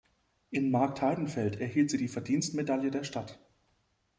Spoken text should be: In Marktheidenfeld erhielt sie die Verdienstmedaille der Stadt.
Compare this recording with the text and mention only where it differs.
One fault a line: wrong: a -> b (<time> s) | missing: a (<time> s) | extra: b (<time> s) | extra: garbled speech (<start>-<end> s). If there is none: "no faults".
no faults